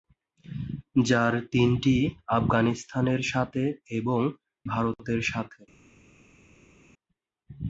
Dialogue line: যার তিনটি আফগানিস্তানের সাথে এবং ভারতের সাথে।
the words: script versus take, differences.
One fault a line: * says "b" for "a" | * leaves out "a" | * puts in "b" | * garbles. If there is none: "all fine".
all fine